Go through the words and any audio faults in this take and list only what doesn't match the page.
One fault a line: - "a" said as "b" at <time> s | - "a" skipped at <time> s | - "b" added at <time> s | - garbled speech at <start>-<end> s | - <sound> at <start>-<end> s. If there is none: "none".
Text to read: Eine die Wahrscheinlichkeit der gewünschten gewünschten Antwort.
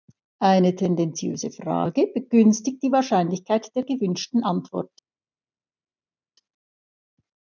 - "tendenziöse Frage begünstigt" added at 0.8 s
- "gewünschten" skipped at 4.4 s